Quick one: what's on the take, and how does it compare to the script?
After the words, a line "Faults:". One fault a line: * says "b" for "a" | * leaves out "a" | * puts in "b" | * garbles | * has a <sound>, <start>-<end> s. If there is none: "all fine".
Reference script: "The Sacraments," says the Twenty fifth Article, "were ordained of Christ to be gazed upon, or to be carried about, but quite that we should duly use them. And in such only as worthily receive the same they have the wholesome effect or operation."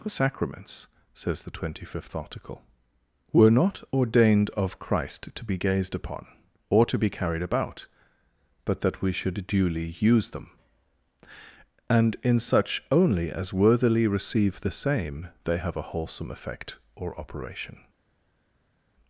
"The Sacraments," says the Twenty fifth Article, "were not ordained of Christ to be gazed upon, or to be carried about, but that we should duly use them. And in such only as worthily receive the same they have a wholesome effect or operation."
Faults:
* puts in "not"
* leaves out "quite"
* says "a" for "the"